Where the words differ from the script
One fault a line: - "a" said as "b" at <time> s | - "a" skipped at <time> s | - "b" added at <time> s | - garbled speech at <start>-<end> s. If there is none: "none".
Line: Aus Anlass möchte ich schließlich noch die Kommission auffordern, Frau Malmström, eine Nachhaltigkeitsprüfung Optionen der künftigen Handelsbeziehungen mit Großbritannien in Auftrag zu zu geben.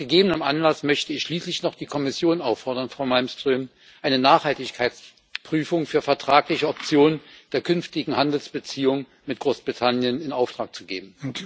- "gegebenem" added at 0.1 s
- "für vertragliche" added at 5.8 s
- "zu" skipped at 10.8 s